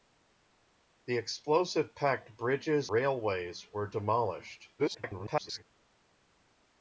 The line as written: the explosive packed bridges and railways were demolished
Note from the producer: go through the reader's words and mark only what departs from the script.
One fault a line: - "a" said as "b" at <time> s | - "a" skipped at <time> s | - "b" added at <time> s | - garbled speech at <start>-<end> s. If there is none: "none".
- "and" skipped at 2.9 s
- garbled speech at 4.8-5.6 s